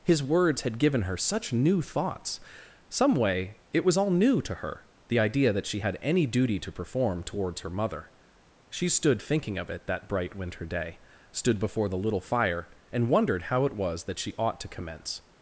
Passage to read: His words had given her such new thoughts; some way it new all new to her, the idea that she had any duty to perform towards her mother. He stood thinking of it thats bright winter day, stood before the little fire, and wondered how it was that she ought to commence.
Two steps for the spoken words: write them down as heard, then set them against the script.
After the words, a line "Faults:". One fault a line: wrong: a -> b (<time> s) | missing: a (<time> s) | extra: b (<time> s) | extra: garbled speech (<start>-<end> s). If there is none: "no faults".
His words had given her such new thoughts; some way it was all new to her, the idea that she had any duty to perform towards her mother. She stood thinking of it that bright winter day, stood before the little fire, and wondered how it was that she ought to commence.
Faults:
wrong: new -> was (3.8 s)
wrong: He -> She (8.7 s)
wrong: thats -> that (9.9 s)